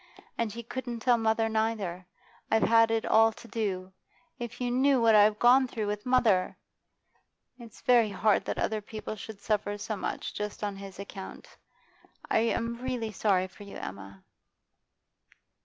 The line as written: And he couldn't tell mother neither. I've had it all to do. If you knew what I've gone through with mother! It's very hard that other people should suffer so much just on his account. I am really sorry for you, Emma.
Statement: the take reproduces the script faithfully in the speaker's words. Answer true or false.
true